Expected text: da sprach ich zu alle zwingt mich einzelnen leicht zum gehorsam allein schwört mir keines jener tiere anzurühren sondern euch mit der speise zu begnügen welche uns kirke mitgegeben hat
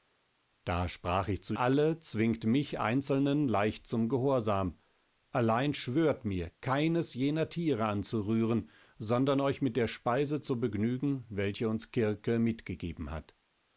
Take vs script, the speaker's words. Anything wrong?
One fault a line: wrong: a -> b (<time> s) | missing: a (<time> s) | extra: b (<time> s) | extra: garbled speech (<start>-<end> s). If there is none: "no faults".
no faults